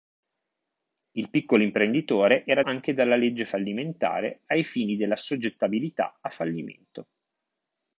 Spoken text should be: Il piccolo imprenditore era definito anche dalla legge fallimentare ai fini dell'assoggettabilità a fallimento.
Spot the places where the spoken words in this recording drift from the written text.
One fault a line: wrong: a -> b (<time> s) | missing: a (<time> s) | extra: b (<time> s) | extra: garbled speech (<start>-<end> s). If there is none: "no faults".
missing: definito (2.6 s)